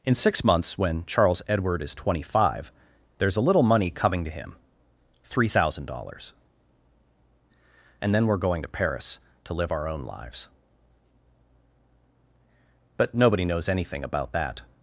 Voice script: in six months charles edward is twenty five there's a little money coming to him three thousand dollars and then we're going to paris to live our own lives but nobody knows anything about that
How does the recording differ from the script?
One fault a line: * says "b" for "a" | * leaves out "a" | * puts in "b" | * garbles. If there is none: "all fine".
* puts in "when"